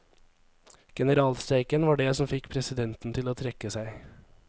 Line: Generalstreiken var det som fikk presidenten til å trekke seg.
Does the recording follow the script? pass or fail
pass